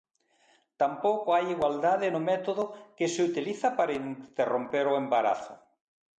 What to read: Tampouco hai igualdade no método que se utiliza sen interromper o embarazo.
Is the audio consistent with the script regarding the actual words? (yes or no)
no